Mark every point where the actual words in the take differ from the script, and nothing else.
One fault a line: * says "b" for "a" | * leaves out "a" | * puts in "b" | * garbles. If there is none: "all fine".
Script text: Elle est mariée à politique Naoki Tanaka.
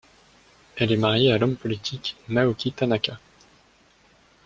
* puts in "l'homme"